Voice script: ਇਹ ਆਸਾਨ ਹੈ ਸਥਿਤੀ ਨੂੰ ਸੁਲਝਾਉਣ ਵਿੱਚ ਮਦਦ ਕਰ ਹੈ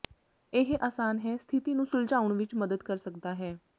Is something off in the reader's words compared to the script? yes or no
yes